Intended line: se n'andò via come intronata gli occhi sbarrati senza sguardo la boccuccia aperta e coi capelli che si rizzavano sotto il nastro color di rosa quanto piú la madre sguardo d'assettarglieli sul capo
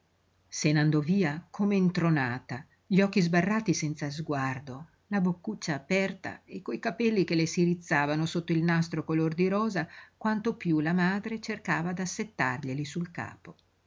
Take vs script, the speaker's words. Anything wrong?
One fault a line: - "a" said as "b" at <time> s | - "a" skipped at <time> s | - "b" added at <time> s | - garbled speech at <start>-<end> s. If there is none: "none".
- "le" added at 7.3 s
- "sguardo" said as "cercava" at 11.4 s